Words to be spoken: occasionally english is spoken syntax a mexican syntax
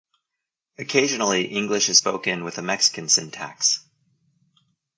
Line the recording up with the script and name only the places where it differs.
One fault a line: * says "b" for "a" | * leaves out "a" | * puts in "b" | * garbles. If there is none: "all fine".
* says "with" for "syntax"